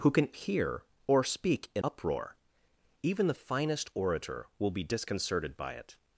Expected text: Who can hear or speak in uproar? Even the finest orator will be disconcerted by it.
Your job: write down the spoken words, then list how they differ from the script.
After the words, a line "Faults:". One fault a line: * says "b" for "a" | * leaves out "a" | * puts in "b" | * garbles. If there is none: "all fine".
Who can hear or speak in uproar? Even the finest orator will be disconcerted by it.
Faults:
all fine